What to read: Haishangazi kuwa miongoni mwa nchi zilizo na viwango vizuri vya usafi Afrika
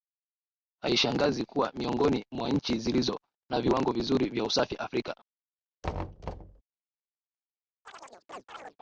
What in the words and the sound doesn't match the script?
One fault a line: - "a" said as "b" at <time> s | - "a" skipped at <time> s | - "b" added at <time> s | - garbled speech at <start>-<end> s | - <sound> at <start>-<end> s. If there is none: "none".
- thud at 5.8-6.6 s
- chirp at 7.8-8.8 s